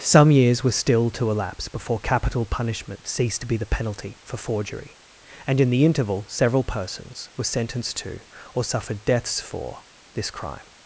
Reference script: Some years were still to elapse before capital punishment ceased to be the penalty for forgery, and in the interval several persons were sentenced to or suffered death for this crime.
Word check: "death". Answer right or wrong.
wrong